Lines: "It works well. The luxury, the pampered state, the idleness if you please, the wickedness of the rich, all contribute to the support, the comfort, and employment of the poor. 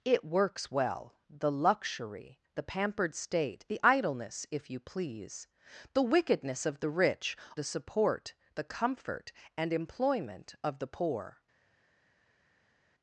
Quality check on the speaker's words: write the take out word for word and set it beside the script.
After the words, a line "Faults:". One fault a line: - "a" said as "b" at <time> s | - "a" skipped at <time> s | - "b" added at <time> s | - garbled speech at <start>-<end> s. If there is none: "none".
"It works well. The luxury, the pampered state, the idleness if you please, the wickedness of the rich, the support, the comfort, and employment of the poor.
Faults:
- "all contribute to" skipped at 7.3 s